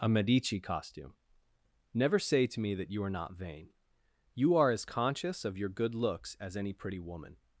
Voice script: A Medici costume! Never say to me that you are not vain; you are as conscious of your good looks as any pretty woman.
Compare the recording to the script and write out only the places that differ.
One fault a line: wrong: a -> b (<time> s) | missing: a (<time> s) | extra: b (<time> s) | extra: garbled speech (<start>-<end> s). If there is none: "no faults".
no faults